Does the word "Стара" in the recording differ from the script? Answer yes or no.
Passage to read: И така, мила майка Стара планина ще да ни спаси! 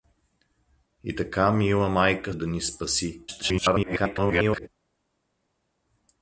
yes